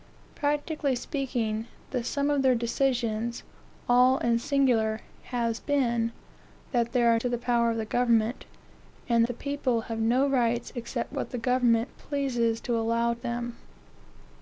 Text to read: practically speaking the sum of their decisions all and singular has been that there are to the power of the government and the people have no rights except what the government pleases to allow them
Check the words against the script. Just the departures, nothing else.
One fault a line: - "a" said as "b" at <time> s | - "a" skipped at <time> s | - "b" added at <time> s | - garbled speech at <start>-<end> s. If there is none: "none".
none